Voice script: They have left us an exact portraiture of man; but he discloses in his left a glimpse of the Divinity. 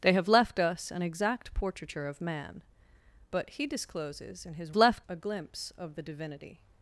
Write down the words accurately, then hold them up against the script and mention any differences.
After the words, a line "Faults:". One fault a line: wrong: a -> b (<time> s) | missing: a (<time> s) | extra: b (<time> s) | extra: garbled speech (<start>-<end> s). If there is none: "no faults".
They have left us an exact portraiture of man; but he discloses in his left a glimpse of the Divinity.
Faults:
no faults